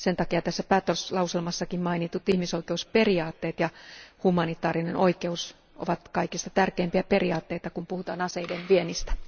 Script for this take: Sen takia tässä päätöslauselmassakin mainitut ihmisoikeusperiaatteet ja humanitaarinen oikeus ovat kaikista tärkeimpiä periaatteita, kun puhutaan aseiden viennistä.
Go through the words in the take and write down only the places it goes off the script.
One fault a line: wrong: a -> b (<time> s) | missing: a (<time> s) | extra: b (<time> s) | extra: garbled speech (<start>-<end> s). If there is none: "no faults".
no faults